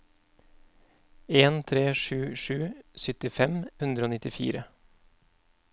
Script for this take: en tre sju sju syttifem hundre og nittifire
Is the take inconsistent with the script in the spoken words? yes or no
no